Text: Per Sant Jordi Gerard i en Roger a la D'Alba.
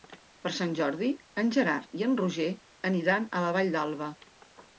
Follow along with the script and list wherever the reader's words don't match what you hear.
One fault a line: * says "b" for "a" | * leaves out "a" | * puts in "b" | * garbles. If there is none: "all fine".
* puts in "en"
* puts in "aniran"
* puts in "Vall"